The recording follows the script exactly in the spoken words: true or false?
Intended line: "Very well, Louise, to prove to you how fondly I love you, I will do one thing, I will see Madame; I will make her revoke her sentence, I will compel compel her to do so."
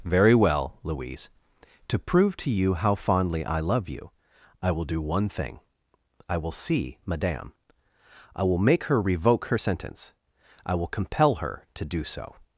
false